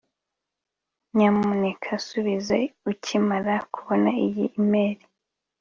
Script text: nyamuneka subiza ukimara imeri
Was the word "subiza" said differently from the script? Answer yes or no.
no